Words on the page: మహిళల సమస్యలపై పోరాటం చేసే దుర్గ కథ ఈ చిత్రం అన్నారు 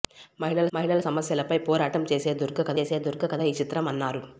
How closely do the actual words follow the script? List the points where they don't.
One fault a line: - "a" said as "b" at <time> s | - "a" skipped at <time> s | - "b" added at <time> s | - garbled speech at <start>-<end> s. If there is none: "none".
- "మహిళల" added at 0.7 s
- "చేసే దుర్గ కథ" added at 2.8 s